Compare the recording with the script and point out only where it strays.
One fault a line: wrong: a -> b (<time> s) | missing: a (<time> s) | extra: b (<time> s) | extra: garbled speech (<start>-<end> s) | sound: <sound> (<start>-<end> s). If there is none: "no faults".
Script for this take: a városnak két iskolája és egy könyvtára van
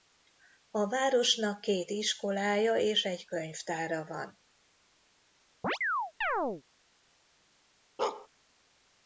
sound: chirp (5.6-6.6 s)
sound: bark (8.0-8.3 s)